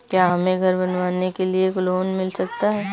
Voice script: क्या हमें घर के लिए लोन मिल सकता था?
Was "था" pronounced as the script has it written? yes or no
no